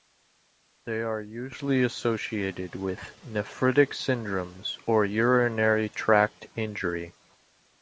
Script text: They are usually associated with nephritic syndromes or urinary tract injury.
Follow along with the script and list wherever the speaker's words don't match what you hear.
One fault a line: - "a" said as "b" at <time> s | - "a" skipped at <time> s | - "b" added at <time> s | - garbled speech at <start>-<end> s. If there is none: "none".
none